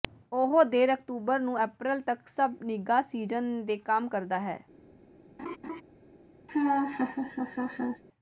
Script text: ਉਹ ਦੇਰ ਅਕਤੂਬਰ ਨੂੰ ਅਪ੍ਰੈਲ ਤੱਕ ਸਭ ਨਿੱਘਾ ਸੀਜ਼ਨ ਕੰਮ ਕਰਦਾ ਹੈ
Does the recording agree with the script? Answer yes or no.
no